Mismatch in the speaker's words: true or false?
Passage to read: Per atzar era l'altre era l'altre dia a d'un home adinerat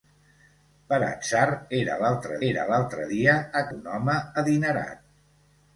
false